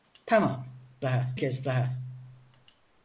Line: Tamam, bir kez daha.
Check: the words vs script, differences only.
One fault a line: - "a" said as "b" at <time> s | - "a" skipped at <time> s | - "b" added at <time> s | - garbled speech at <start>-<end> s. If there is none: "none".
- "bir" said as "daha" at 1.0 s